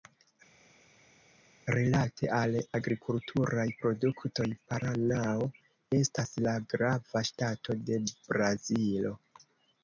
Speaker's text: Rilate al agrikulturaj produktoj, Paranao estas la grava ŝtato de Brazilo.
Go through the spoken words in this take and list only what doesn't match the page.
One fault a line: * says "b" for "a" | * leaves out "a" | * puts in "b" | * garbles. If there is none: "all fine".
all fine